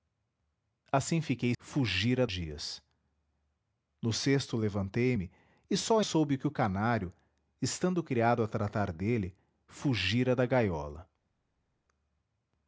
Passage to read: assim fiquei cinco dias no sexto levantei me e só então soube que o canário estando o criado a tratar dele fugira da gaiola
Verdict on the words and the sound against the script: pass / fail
fail